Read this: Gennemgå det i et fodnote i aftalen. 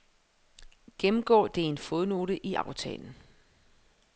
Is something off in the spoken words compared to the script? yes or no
yes